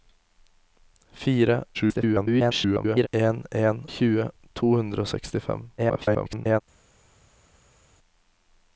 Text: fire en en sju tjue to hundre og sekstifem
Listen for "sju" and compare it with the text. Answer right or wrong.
wrong